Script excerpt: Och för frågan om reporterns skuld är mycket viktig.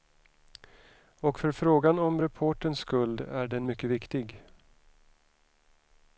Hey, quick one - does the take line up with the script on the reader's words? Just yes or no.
no